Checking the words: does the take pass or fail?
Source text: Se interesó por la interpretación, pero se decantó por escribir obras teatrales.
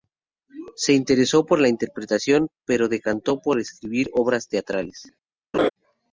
pass